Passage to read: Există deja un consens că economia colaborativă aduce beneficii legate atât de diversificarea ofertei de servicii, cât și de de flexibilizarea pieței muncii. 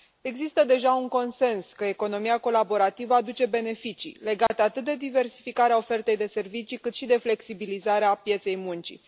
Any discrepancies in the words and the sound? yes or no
yes